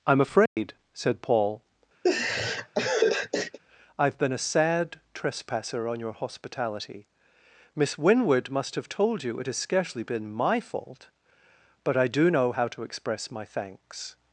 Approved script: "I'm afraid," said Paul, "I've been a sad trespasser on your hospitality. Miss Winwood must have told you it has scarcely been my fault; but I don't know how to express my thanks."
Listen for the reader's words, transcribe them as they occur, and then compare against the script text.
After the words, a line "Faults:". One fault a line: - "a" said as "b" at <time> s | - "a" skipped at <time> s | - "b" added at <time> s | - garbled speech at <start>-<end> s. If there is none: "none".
"I'm afraid," said Paul, "I've been a sad trespasser on your hospitality. Miss Winwood must have told you it has scarcely been my fault; but I do know how to express my thanks."
Faults:
- "don't" said as "do" at 12.1 s